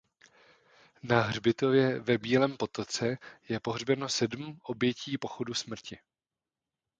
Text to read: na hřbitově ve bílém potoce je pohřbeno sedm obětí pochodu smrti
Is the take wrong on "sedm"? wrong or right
right